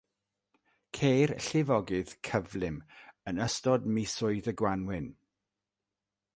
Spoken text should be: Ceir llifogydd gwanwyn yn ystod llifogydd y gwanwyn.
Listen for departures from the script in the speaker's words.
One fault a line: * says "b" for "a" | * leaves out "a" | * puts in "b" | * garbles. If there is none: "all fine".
* says "cyflym" for "gwanwyn"
* says "misoedd" for "llifogydd"